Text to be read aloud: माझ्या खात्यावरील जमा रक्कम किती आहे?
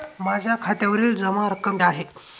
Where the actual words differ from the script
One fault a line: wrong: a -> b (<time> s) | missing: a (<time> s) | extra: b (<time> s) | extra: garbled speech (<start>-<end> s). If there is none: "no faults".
missing: किती (1.8 s)